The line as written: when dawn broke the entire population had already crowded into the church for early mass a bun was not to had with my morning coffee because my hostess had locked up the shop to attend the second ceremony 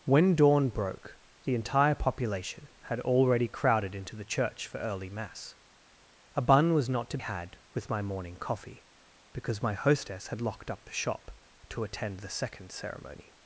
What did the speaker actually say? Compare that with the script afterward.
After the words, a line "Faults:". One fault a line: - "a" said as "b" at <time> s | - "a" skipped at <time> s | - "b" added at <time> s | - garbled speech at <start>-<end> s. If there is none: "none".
when dawn broke the entire population had already crowded into the church for early mass a bun was not to had with my morning coffee because my hostess had locked up the shop to attend the second ceremony
Faults:
none